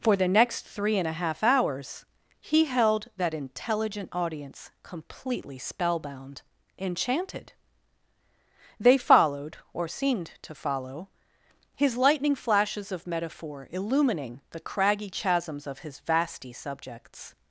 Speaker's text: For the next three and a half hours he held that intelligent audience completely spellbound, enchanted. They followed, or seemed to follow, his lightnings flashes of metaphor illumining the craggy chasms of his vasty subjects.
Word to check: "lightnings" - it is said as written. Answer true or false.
false